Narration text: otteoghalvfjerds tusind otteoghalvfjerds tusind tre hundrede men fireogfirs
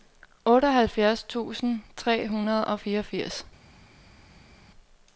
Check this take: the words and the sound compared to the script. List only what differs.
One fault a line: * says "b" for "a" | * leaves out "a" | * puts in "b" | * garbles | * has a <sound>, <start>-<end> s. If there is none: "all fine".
* leaves out "otteoghalvfjerds tusind"
* says "og" for "men"